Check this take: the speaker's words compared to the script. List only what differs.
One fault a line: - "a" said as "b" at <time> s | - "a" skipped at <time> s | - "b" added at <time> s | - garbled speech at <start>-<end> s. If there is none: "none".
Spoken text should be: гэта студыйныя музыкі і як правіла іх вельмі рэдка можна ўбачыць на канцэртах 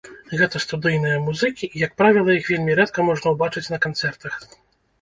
none